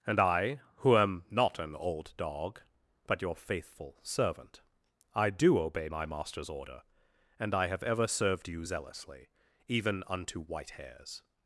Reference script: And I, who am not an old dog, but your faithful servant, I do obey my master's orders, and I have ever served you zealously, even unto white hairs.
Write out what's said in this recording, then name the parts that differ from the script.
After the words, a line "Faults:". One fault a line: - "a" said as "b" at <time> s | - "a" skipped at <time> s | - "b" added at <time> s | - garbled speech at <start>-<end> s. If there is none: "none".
And I, who am not an old dog, but your faithful servant, I do obey my master's order, and I have ever served you zealously, even unto white hairs.
Faults:
- "orders" said as "order" at 6.5 s